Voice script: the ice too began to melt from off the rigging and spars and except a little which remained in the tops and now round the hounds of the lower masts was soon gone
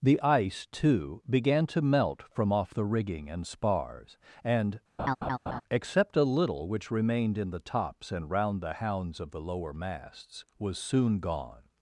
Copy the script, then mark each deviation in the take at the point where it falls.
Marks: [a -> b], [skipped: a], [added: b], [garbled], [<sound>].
the ice too began to melt from off the rigging and spars and [laugh] except a little which remained in the tops and [skipped: now] round the hounds of the lower masts was soon gone